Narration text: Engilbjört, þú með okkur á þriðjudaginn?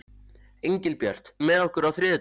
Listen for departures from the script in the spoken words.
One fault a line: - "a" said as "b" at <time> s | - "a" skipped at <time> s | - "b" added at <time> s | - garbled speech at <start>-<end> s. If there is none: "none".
none